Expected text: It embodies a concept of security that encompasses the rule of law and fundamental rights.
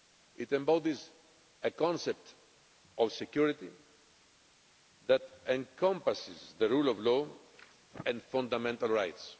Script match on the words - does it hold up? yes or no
yes